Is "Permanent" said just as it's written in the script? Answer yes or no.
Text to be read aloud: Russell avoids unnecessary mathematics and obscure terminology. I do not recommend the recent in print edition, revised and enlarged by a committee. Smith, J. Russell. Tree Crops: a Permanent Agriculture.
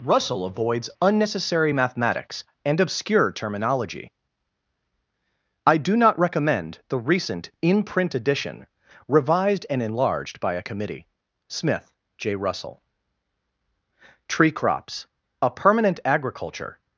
yes